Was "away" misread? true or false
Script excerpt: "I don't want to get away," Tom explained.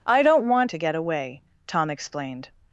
false